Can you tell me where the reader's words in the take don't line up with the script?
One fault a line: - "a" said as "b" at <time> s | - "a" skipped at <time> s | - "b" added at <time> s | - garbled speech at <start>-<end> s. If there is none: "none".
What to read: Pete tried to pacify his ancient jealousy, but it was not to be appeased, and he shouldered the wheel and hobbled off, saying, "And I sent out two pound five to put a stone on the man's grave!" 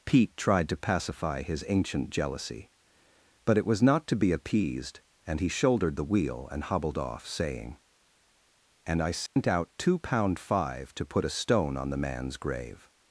none